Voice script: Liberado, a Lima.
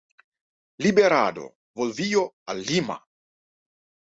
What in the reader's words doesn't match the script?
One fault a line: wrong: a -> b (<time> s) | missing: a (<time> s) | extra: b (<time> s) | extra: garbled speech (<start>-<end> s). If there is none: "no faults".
extra: volvió (1.8 s)